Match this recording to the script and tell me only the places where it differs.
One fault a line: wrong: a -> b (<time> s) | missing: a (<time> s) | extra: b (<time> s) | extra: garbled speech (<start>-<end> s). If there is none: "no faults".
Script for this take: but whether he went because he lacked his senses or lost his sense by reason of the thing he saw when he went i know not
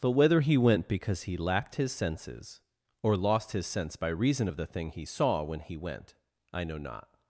no faults